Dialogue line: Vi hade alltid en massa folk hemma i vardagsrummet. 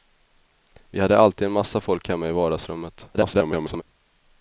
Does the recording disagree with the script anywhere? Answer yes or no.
yes